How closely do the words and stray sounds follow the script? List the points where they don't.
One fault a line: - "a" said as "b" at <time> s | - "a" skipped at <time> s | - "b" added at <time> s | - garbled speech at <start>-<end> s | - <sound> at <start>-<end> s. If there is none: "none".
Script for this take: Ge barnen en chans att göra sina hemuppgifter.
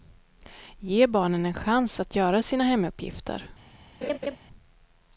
- laugh at 4.0-4.4 s